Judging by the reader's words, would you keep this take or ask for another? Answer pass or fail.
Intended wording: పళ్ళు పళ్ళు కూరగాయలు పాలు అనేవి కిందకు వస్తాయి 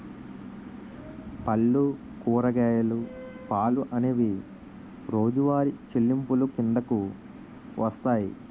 fail